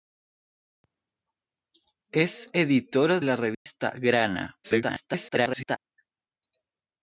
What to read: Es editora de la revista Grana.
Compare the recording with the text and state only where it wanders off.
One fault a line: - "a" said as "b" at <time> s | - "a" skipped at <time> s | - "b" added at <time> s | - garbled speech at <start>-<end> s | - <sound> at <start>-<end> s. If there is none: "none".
- "de" skipped at 3.2 s
- dropout at 3.5-3.7 s
- garbled speech at 4.6-5.8 s